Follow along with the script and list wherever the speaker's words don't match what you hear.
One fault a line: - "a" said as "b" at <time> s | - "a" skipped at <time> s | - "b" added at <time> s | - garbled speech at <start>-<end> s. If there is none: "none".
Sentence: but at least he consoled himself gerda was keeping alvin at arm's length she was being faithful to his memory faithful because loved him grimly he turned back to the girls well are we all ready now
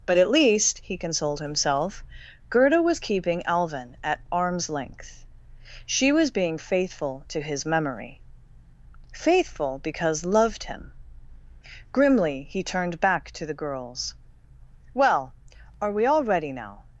none